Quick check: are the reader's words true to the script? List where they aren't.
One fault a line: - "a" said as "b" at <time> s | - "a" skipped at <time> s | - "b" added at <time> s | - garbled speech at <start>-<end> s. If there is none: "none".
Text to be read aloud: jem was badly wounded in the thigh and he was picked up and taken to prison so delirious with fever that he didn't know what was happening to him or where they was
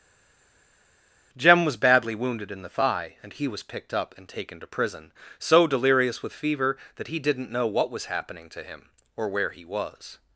- "they" said as "he" at 9.5 s